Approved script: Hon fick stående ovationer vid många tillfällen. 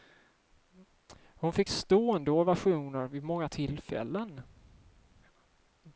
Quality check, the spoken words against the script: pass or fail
pass